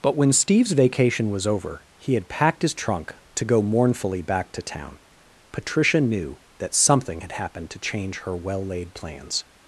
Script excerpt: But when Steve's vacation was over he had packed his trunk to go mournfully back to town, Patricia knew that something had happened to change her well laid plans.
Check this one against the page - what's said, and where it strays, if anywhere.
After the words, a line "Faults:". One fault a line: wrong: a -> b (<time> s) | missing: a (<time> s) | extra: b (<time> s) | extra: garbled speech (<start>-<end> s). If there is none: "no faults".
But when Steve's vacation was over he had packed his trunk to go mournfully back to town, Patricia knew that something had happened to change her well laid plans.
Faults:
no faults